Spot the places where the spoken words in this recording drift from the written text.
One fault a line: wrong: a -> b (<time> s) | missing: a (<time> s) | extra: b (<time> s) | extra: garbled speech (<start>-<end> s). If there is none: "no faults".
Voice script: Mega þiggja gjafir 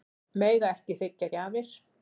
extra: ekki (0.8 s)